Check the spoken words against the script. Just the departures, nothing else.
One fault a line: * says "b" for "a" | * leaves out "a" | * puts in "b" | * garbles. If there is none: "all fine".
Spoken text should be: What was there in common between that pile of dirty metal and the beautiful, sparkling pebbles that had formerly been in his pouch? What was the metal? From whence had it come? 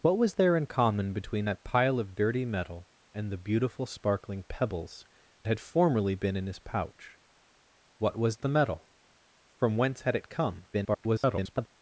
* leaves out "that"
* garbles